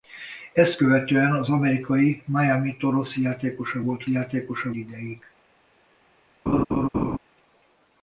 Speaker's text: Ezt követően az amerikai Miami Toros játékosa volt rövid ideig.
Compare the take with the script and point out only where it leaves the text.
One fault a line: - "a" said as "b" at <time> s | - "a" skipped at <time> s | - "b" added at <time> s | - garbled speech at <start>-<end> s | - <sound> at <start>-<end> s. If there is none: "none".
- "rövid" said as "játékosa" at 4.1 s
- laugh at 6.5-7.2 s